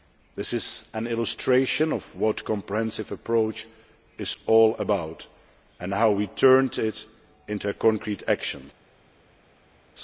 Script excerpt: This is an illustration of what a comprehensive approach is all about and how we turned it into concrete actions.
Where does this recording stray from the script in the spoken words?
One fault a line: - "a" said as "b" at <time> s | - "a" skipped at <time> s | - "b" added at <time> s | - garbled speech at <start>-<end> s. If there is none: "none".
none